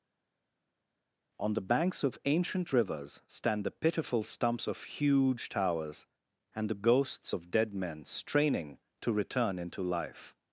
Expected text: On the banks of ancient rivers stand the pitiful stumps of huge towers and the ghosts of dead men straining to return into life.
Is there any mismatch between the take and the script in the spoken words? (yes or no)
no